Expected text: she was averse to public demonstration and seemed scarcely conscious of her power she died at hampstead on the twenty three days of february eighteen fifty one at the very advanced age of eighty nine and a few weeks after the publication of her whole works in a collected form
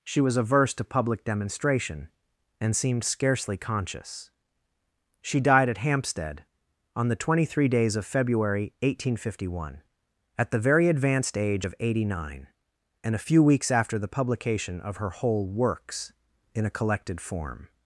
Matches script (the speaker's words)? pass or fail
fail